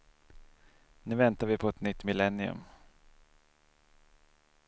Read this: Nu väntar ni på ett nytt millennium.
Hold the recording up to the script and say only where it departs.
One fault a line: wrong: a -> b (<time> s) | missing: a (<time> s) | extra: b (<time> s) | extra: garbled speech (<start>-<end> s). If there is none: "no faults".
wrong: ni -> vi (1.5 s)